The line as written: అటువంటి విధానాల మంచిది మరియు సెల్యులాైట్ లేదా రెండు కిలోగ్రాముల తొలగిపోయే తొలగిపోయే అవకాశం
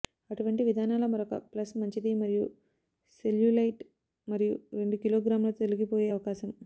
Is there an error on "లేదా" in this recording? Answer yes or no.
yes